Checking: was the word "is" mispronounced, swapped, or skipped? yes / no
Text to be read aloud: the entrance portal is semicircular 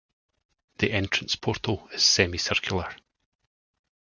no